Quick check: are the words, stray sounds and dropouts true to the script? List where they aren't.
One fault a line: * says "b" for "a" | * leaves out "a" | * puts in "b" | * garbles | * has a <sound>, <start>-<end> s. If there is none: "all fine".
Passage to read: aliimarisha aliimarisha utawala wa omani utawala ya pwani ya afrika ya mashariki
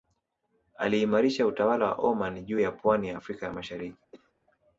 * leaves out "aliimarisha"
* says "juu" for "utawala"
* has a cough, 4.1-4.3 s